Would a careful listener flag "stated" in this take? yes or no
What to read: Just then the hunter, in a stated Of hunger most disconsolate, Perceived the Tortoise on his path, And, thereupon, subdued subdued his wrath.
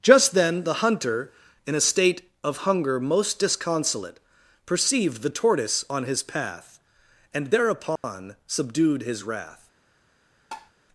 yes